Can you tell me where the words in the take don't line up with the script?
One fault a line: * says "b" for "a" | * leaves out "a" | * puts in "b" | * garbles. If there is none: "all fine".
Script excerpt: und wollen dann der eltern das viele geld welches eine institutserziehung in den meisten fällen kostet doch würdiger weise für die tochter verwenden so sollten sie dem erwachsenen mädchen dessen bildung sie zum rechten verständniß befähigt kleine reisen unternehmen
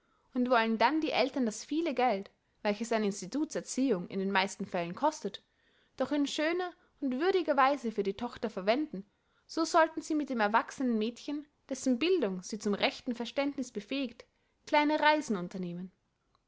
* says "die" for "der"
* puts in "in schöner und"
* puts in "mit"